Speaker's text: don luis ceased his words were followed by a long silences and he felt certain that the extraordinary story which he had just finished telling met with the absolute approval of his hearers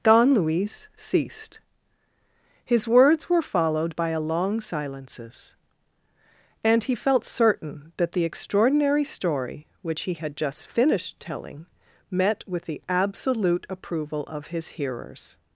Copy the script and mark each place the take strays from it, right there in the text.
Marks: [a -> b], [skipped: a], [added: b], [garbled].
don luis ceased his words were followed by a long silences and he felt certain that the extraordinary story which he had just finished telling met with the absolute approval of his hearers